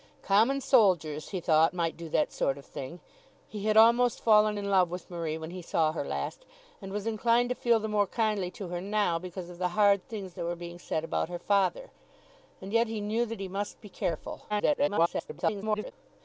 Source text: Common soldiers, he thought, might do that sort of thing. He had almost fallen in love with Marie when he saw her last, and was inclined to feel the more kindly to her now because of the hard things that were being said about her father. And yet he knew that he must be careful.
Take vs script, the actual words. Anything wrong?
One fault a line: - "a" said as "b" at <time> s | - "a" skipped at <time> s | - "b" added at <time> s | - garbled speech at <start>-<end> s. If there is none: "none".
- garbled speech at 14.5-15.9 s